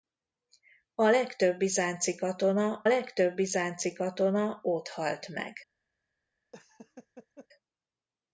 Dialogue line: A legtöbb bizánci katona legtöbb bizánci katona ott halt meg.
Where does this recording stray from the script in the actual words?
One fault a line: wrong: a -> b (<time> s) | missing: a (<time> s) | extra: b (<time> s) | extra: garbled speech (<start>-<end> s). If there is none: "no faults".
no faults